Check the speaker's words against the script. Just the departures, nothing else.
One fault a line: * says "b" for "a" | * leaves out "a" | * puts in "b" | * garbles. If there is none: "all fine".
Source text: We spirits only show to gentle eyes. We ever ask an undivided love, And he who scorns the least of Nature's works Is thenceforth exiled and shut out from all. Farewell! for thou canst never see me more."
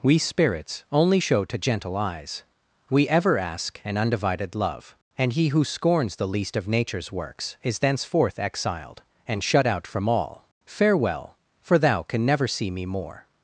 * says "can" for "canst"